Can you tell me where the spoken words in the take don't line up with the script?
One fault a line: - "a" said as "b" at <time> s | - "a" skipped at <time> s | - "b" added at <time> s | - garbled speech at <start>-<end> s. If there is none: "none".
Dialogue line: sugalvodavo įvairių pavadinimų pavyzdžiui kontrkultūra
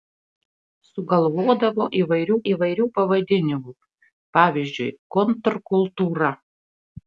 - "įvairių" added at 2.5 s